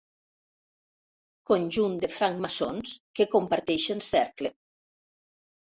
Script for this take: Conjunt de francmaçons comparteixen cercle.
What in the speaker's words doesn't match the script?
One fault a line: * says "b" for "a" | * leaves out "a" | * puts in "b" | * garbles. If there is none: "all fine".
* puts in "que"